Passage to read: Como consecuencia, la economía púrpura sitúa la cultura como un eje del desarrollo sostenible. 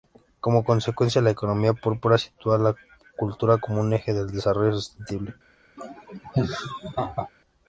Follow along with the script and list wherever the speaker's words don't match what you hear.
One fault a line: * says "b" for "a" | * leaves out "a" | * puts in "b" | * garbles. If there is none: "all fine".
all fine